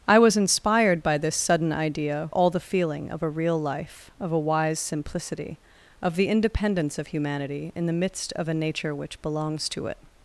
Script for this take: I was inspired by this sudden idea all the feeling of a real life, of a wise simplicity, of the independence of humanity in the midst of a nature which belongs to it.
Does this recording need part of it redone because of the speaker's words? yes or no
no